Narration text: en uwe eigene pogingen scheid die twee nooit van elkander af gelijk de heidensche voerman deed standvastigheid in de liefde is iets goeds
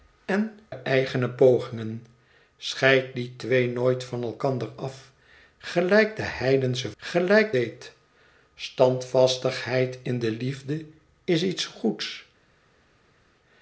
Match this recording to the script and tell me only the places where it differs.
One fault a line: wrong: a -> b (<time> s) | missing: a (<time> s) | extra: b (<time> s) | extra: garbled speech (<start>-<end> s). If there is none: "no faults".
missing: uwe (0.6 s)
wrong: voerman -> gelijk (7.0 s)